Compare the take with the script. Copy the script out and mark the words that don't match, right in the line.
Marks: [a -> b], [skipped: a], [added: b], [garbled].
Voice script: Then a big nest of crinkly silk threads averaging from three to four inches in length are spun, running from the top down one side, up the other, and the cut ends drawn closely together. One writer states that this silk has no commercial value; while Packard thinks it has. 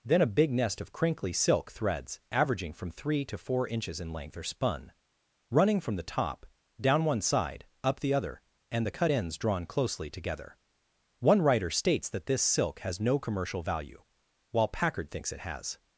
Then a big nest of crinkly silk threads averaging from three to four inches in length are spun, running from the top down one side, up the other, and the cut ends drawn closely together. One writer states that this silk has no commercial value; while Packard thinks it has.